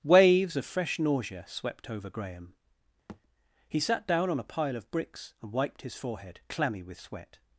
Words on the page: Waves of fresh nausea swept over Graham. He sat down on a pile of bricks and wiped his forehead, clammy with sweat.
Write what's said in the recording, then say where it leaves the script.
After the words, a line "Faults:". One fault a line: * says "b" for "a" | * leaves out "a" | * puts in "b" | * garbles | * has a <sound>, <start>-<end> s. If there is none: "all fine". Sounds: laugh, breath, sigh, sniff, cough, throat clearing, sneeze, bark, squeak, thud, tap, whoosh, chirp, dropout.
Waves of fresh nausea swept over Graham. He sat down on a pile of bricks and wiped his forehead, clammy with sweat.
Faults:
* has a thud, 3.1-3.2 s